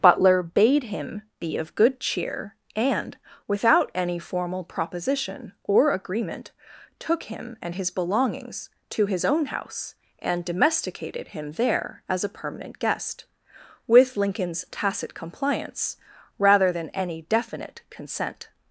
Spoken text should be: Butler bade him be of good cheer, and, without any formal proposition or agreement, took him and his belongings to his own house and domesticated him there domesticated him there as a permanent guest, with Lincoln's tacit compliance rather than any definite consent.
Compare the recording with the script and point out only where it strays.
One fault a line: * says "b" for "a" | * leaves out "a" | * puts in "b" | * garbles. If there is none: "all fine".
* leaves out "domesticated him there"